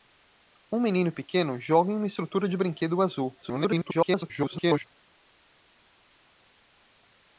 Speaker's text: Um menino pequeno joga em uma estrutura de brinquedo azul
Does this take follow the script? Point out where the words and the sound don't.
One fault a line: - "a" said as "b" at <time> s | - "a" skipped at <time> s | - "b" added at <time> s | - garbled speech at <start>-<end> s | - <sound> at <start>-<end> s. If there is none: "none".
- garbled speech at 3.4-4.9 s